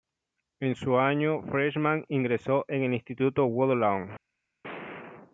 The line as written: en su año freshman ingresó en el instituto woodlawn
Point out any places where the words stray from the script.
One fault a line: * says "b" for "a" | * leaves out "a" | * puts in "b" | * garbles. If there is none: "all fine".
all fine